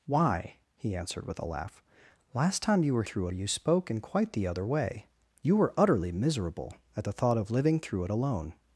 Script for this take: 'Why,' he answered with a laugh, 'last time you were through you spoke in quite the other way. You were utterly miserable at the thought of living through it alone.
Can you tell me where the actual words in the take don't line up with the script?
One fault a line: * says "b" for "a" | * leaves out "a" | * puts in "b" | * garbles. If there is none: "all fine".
all fine